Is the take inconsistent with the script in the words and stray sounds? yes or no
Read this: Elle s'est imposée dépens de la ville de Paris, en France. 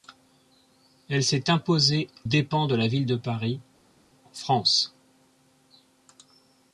no